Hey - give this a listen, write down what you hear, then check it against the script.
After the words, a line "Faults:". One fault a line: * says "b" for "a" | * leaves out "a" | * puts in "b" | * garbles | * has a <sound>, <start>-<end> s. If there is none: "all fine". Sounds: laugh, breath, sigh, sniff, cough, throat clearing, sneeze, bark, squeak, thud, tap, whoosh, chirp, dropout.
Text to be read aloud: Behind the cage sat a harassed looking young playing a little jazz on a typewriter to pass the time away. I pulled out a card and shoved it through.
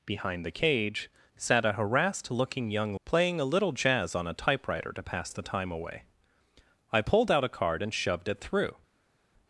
Behind the cage sat a harassed looking young playing a little jazz on a typewriter to pass the time away. I pulled out a card and shoved it through.
Faults:
all fine